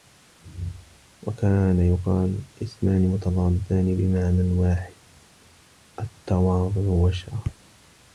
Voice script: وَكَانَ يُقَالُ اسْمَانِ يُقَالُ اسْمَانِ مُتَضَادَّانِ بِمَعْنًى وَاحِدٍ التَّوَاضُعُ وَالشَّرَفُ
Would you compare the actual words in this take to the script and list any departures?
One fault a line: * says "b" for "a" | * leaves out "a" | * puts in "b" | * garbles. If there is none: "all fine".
* leaves out "يُقَالُ اسْمَانِ"